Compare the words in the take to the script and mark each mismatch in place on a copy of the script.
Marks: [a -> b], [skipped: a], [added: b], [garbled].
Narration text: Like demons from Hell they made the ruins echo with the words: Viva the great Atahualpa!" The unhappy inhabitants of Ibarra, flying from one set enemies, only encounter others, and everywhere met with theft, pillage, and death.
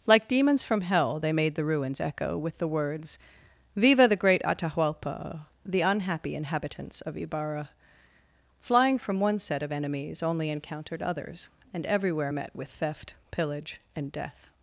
Like demons from Hell they made the ruins echo with the words: Viva the great Atahualpa!" The unhappy inhabitants of Ibarra, flying from one set [added: of] enemies, only [encounter -> encountered] others, and everywhere met with theft, pillage, and death.